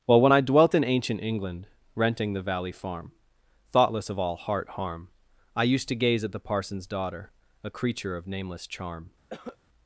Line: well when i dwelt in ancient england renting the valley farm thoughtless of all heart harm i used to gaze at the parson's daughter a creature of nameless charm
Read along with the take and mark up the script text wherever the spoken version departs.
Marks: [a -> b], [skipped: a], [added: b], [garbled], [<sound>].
well when i dwelt in ancient england renting the valley farm thoughtless of all heart harm i used to gaze at the parson's daughter a creature of nameless charm [cough]